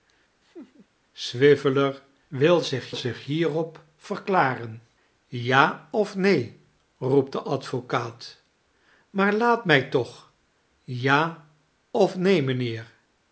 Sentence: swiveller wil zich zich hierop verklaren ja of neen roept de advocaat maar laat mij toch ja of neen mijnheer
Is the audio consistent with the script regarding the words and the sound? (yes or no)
no